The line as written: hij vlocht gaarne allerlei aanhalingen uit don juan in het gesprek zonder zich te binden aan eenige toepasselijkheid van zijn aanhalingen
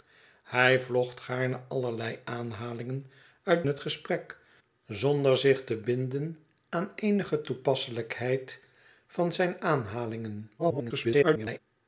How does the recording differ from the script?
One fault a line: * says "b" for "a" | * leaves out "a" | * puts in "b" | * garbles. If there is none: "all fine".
* leaves out "don juan in"
* garbles